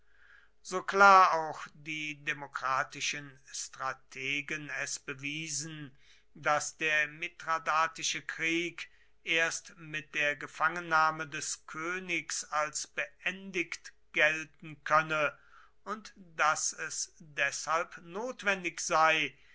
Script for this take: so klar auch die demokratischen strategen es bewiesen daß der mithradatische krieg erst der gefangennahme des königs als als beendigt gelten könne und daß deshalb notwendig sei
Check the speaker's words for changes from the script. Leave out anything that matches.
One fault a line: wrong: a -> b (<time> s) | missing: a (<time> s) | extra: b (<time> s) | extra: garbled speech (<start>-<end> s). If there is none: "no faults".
extra: mit (9.8 s)
missing: als (12.8 s)
extra: es (16.7 s)